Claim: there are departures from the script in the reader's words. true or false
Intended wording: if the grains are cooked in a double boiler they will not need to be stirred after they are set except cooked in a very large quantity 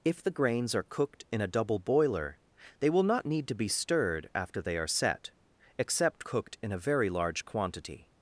false